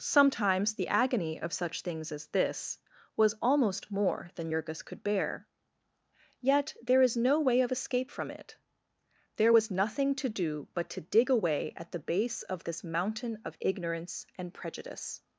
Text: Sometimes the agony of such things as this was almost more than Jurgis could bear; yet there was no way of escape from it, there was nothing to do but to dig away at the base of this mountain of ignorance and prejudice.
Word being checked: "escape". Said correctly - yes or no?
yes